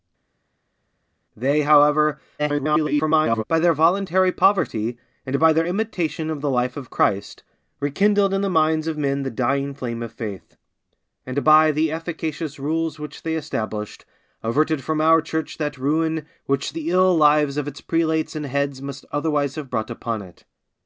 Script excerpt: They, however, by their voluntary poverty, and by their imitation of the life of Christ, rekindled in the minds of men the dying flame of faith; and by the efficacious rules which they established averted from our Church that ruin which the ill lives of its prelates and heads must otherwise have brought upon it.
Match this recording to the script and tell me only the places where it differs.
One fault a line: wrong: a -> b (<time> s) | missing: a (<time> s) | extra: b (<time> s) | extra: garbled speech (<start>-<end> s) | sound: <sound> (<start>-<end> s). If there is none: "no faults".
extra: garbled speech (2.4-3.4 s)